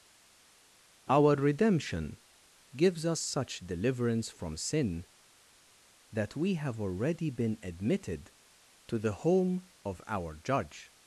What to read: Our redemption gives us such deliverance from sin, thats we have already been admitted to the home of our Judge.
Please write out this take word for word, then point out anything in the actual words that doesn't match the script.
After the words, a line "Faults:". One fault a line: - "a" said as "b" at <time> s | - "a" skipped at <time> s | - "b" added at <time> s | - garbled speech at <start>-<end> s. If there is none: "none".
Our redemption gives us such deliverance from sin, that we have already been admitted to the home of our Judge.
Faults:
- "thats" said as "that" at 6.1 s